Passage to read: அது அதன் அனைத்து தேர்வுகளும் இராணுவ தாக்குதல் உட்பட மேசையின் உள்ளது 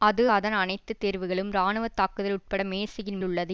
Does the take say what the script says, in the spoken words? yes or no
yes